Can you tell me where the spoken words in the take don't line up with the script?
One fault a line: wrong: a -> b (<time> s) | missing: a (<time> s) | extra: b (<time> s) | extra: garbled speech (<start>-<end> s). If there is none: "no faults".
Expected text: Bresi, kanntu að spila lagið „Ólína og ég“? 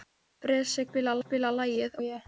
wrong: kanntu -> spila (0.9 s)
missing: Ólína (2.0 s)